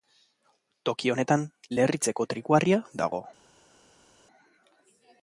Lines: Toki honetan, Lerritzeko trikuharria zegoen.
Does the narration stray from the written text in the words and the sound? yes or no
yes